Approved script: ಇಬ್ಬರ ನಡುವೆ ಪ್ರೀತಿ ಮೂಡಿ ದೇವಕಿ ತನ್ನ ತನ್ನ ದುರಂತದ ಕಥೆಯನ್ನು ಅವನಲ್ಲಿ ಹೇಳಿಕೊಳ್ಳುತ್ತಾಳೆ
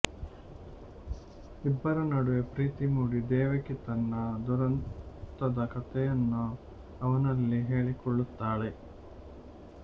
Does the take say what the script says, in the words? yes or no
no